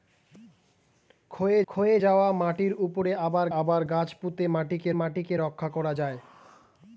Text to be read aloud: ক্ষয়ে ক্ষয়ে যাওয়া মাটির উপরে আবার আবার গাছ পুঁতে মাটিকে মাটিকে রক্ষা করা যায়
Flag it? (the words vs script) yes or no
no